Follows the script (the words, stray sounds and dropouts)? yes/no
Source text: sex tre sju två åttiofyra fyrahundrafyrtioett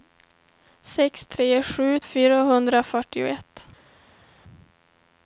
no